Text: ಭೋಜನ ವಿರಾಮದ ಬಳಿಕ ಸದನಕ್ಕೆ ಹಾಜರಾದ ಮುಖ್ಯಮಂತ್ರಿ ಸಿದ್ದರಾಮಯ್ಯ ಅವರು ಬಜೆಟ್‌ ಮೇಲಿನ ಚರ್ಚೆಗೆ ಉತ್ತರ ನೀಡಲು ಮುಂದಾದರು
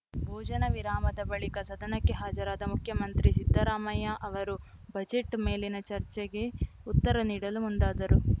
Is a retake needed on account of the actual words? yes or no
no